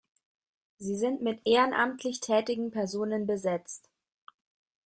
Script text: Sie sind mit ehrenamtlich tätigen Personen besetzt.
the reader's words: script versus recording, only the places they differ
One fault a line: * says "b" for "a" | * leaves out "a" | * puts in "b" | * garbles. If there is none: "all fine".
all fine